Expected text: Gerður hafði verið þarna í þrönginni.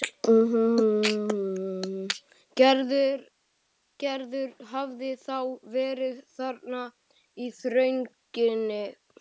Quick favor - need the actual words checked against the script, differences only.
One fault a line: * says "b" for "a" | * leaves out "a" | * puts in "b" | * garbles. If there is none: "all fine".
* puts in "þá"